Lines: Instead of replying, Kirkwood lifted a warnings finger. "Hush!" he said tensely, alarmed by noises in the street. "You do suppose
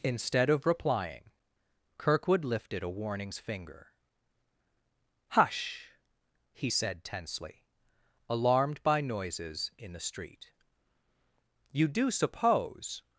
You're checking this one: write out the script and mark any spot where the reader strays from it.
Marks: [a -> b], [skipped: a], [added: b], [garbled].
Instead of replying, Kirkwood lifted a warnings finger. "Hush!" he said tensely, alarmed by noises in the street. "You do suppose